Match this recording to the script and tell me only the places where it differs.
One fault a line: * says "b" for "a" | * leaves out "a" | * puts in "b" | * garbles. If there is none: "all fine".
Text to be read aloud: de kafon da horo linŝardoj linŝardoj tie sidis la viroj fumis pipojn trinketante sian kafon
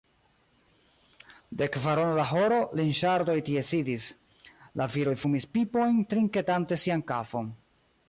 * says "kvarono" for "kafon"
* leaves out "linŝardoj"